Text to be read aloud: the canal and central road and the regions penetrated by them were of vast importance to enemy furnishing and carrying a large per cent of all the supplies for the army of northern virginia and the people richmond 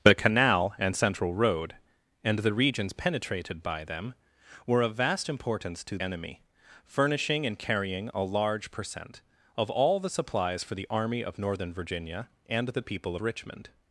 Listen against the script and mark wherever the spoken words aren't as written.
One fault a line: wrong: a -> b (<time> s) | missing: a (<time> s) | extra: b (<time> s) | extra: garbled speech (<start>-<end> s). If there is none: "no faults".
no faults